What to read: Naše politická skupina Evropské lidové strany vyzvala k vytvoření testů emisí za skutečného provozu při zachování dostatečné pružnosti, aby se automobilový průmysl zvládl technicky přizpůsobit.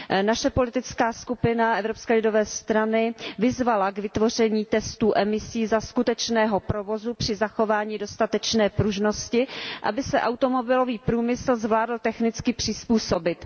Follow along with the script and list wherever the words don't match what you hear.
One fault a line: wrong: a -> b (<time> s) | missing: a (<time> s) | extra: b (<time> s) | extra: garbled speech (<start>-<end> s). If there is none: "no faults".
no faults